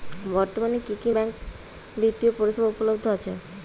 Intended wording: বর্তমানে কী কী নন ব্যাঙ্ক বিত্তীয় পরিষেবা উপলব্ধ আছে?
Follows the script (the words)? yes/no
no